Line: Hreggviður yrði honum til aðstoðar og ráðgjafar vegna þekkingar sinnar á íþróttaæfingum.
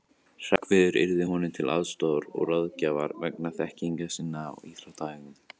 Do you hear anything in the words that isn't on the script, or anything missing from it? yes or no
no